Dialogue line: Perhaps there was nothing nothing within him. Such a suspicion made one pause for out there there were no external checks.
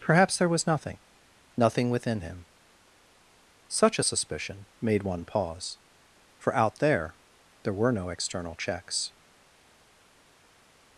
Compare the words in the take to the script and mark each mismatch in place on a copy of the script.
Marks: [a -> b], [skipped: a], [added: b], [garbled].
Perhaps there was nothing nothing within him. Such a suspicion made one pause for out there there were no external checks.